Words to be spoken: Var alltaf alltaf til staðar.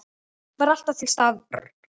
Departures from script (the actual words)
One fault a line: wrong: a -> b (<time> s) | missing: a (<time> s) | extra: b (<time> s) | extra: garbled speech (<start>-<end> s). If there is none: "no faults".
missing: alltaf (1.0 s)